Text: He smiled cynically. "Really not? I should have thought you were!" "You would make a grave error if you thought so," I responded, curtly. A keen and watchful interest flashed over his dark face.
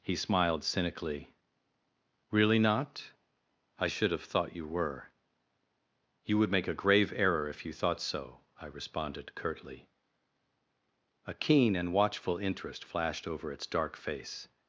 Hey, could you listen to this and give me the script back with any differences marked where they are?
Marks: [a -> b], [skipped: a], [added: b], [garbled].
He smiled cynically. "Really not? I should have thought you were!" "You would make a grave error if you thought so," I responded, curtly. A keen and watchful interest flashed over [his -> its] dark face.